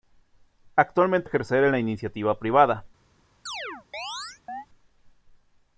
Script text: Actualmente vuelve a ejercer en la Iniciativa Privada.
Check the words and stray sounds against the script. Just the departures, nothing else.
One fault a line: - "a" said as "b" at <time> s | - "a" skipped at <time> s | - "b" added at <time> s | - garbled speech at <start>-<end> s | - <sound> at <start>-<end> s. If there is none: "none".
- "vuelve" skipped at 1.3 s
- chirp at 3.5-4.7 s